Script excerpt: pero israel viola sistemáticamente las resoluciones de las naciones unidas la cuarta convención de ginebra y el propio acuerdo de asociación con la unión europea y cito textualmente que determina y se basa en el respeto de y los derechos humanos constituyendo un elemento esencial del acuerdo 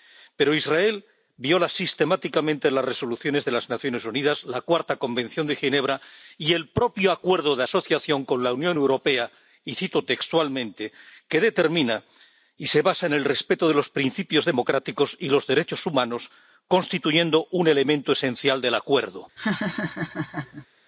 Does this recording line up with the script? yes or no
no